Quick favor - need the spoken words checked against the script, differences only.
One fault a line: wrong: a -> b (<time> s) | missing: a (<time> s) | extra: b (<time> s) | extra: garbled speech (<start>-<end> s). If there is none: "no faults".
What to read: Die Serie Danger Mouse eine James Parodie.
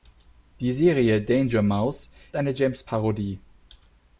no faults